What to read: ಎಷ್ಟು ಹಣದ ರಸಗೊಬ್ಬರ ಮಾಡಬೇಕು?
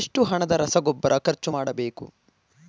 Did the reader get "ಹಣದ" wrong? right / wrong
right